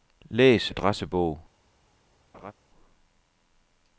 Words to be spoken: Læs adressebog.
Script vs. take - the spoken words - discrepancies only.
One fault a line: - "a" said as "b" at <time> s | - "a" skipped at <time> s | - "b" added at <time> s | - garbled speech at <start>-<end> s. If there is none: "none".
none